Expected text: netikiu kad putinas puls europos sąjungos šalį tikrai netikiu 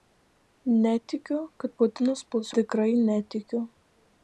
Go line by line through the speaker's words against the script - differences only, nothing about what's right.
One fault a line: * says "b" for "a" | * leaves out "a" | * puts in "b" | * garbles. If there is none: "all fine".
* leaves out "europos sąjungos šalį"